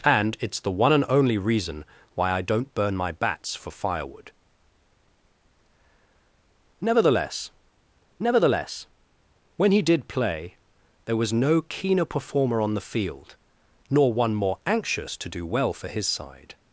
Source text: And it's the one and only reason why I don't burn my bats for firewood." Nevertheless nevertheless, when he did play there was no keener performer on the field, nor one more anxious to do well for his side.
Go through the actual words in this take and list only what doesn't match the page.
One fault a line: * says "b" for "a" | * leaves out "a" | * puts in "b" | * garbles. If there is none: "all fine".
all fine